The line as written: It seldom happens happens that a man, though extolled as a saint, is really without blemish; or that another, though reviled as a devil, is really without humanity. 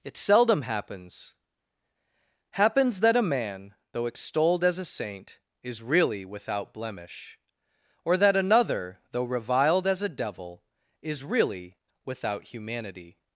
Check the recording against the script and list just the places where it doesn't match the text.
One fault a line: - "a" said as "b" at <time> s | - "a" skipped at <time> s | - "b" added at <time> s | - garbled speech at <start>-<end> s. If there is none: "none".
none